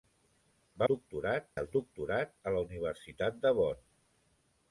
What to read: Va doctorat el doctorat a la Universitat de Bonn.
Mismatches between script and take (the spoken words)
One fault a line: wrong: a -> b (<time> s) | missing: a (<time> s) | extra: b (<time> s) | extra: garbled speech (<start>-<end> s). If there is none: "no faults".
no faults